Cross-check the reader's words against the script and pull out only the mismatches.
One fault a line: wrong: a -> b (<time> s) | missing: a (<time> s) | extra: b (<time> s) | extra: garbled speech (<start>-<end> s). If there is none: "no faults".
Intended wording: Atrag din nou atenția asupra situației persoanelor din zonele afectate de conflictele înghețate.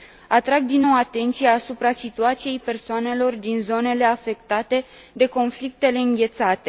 no faults